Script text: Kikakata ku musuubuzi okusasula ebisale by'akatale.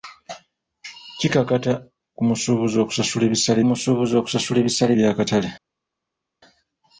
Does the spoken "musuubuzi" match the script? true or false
true